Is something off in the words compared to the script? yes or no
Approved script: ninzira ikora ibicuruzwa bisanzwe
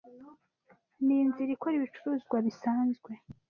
no